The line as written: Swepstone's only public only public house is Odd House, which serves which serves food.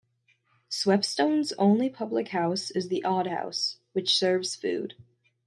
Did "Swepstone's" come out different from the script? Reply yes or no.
no